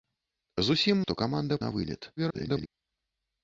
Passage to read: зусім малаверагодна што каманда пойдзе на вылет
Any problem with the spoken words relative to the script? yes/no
yes